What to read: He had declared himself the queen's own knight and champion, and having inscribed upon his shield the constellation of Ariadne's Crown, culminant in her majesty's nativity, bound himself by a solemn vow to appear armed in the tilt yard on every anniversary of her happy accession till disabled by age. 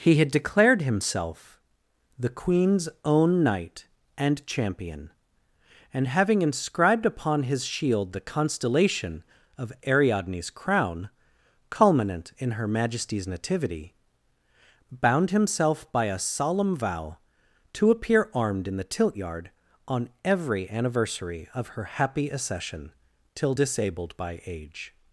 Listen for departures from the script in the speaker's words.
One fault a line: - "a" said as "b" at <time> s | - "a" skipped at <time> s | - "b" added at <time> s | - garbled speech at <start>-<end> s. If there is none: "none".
none